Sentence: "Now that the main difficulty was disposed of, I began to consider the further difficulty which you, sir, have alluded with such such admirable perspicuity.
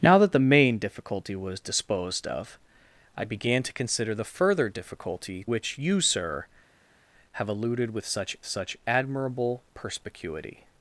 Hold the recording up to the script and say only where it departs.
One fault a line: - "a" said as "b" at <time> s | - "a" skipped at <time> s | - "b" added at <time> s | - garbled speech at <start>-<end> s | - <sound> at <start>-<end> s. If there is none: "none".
none